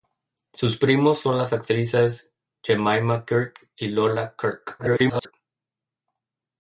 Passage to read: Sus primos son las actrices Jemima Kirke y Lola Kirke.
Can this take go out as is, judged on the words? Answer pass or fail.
fail